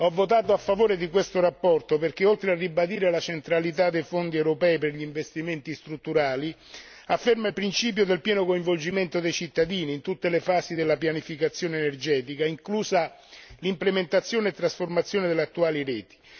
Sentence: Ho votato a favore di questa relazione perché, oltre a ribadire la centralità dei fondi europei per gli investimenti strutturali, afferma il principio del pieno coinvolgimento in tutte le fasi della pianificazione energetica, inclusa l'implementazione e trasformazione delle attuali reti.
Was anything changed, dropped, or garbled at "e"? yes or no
no